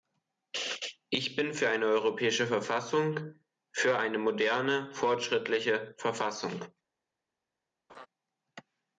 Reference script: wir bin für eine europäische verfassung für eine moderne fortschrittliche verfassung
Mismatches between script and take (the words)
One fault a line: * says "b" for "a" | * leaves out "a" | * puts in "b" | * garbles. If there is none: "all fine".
* says "ich" for "wir"